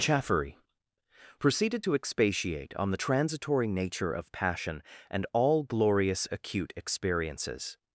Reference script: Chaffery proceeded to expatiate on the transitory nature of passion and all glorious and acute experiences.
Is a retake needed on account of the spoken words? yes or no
yes